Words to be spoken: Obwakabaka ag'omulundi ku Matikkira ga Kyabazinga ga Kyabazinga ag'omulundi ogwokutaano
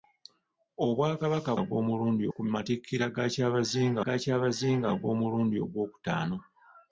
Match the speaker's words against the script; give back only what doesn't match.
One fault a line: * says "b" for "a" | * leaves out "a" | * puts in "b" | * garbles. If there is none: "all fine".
all fine